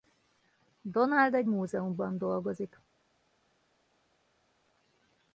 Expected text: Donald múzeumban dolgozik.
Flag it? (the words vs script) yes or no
yes